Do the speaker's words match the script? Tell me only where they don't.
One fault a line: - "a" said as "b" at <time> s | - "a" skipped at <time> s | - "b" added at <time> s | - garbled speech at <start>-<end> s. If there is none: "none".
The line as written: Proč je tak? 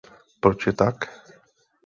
none